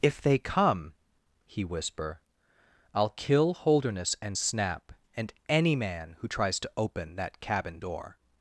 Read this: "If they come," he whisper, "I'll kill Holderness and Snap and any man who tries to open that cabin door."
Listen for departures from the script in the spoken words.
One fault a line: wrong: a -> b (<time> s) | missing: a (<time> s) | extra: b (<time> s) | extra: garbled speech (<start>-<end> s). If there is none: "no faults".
no faults